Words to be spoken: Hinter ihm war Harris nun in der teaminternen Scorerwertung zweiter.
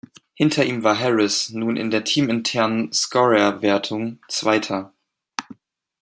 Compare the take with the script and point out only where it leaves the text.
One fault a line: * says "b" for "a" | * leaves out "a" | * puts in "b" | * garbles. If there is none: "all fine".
all fine